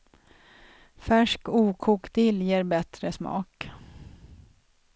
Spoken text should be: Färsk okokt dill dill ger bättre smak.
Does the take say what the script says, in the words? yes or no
no